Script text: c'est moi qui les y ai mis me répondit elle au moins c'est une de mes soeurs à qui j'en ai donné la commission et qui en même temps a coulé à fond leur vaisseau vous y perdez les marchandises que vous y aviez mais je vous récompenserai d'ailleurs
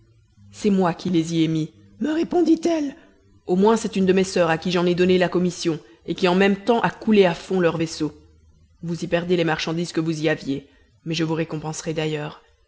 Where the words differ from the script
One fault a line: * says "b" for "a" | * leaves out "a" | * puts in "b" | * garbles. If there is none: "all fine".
all fine